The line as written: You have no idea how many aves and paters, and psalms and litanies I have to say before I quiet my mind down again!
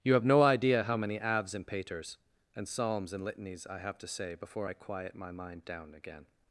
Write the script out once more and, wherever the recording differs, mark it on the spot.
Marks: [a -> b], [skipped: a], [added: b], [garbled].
You have no idea how many aves and paters, and psalms and litanies I have to say before I quiet my mind down again!